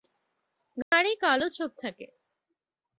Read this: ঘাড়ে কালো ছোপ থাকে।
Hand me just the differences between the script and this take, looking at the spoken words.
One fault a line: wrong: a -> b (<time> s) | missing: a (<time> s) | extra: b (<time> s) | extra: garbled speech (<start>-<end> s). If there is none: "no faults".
no faults